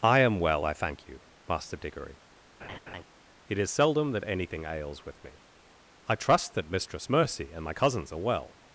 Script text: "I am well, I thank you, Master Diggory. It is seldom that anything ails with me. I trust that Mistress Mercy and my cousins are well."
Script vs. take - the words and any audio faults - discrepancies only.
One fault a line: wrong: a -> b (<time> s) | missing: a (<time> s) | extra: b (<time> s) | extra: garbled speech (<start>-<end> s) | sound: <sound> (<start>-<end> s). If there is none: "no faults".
sound: laugh (2.6-3.0 s)